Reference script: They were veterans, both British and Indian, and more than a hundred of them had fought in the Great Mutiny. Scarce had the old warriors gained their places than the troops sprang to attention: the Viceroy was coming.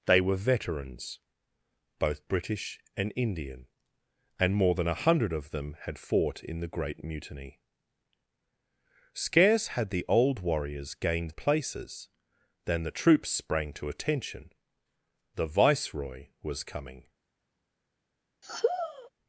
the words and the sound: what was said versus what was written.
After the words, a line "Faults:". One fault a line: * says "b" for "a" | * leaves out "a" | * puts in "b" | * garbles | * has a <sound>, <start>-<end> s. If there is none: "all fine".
They were veterans, both British and Indian, and more than a hundred of them had fought in the Great Mutiny. Scarce had the old warriors gained places than the troops sprang to attention: the Viceroy was coming.
Faults:
* leaves out "their"
* has a sigh, 18.4-19.1 s